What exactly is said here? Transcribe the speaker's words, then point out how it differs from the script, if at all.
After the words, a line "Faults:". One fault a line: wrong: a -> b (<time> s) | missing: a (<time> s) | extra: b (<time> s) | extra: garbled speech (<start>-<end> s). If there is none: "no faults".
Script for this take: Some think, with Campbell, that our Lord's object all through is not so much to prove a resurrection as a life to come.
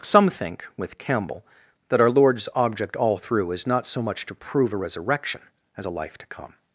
Some think, with Campbell, that our Lord's object all through is not so much to prove a resurrection as a life to come.
Faults:
no faults